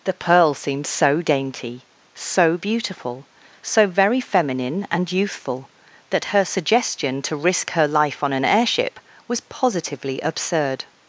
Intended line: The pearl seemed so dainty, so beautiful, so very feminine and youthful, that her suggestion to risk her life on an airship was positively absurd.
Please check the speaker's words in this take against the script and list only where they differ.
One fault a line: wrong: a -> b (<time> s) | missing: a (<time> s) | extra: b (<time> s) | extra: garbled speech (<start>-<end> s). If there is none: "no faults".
no faults